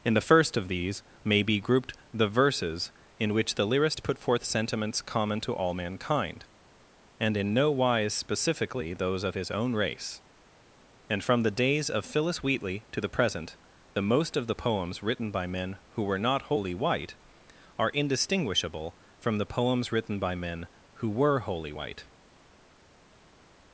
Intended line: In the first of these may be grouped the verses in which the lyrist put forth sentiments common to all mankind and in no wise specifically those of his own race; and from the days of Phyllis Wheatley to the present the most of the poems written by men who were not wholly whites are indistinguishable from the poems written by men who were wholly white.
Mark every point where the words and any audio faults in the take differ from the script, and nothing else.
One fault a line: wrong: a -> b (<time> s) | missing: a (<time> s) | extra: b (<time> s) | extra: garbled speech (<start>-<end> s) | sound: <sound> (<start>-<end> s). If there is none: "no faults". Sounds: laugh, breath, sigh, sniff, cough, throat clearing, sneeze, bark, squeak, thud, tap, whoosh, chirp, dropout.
wrong: whites -> white (16.7 s)